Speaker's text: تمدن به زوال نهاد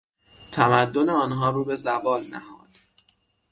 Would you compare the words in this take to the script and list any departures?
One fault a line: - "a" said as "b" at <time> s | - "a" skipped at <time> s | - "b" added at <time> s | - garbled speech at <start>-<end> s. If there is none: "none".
- "آنها رو" added at 1.1 s